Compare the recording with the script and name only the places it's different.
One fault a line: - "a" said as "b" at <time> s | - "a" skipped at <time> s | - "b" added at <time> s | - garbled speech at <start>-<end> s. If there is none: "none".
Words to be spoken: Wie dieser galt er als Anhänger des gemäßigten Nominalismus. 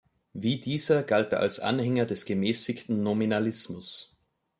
none